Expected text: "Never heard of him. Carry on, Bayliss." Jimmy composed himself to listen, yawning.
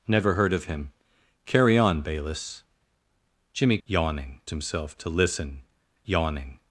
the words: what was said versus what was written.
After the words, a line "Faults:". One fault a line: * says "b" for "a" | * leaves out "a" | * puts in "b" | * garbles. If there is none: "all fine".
"Never heard of him. Carry on, Bayliss." Jimmy yawning himself to listen, yawning.
Faults:
* says "yawning" for "composed"